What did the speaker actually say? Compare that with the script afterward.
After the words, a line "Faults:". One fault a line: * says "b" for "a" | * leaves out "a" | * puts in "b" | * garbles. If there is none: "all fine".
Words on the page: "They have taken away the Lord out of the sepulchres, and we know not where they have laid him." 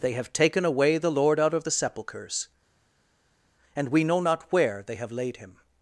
"They have taken away the Lord out of the sepulchres, and we know not where they have laid him."
Faults:
all fine